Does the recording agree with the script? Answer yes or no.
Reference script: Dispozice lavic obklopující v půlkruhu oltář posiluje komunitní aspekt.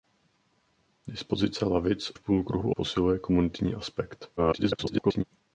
no